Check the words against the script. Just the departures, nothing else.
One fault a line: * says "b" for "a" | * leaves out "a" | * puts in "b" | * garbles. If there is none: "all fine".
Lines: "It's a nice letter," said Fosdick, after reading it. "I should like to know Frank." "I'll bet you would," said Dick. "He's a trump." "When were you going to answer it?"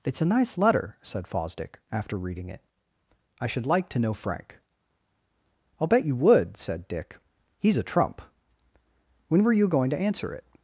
all fine